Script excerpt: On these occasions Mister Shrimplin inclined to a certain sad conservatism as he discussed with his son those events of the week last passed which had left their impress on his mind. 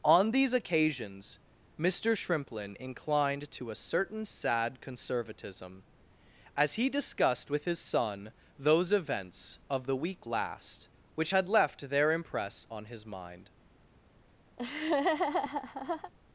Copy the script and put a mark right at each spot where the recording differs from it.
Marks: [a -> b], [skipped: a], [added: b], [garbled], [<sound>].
On these occasions Mister Shrimplin inclined to a certain sad conservatism as he discussed with his son those events of the week last [skipped: passed] which had left their impress on his mind. [laugh]